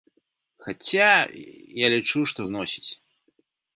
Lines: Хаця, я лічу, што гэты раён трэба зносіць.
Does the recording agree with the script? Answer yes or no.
no